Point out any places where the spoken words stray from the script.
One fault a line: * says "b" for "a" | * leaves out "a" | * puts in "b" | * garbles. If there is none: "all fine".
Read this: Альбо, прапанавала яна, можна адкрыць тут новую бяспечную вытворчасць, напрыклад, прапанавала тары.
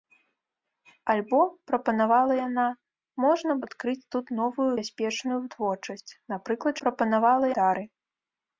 all fine